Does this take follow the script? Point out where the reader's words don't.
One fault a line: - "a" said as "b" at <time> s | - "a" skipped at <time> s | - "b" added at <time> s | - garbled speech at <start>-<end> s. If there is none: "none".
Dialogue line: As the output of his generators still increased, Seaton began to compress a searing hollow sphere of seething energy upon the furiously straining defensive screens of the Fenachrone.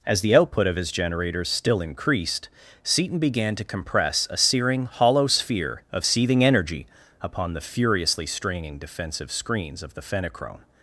none